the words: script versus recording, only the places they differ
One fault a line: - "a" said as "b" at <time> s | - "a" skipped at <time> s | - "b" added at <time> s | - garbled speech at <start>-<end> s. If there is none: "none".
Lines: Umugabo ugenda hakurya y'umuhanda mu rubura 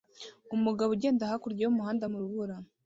none